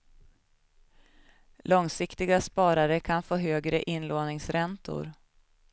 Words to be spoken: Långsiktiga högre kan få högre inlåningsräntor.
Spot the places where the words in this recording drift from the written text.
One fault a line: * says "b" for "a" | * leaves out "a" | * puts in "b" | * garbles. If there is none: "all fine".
* says "sparare" for "högre"